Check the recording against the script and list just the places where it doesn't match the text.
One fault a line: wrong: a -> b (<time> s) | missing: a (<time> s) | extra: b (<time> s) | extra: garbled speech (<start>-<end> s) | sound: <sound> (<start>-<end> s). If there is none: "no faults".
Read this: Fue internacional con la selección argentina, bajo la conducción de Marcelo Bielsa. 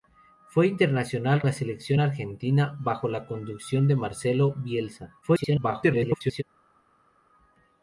missing: con (1.4 s)
extra: garbled speech (5.2-6.4 s)